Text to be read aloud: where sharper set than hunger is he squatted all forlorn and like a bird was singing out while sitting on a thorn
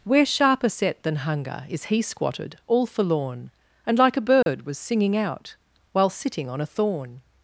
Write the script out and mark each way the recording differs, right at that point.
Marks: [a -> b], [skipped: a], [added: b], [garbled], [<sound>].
where sharper set than hunger is he squatted all forlorn and like a bird [dropout] was singing out while sitting on a thorn